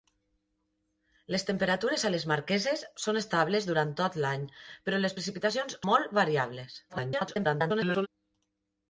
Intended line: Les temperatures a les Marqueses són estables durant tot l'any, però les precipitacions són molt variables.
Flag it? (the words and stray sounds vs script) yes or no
yes